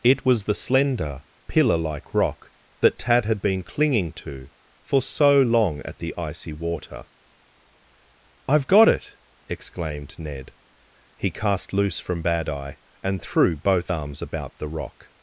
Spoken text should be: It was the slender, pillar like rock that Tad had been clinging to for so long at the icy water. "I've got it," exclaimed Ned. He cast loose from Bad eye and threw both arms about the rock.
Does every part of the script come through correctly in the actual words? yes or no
yes